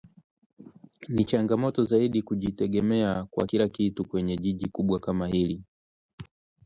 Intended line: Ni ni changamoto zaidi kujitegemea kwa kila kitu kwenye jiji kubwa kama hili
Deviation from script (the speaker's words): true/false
true